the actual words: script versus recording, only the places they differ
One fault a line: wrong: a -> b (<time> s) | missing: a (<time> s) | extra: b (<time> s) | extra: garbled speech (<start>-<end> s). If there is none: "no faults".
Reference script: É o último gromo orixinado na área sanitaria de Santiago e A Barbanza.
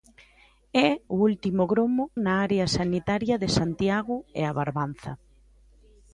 missing: orixinado (2.0 s)